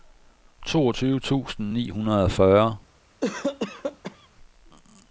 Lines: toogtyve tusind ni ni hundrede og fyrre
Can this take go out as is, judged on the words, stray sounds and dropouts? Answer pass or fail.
fail